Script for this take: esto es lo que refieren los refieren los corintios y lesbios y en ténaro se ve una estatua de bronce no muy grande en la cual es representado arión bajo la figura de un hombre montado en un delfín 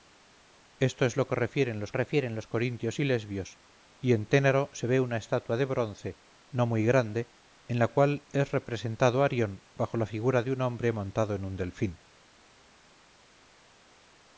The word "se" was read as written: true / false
true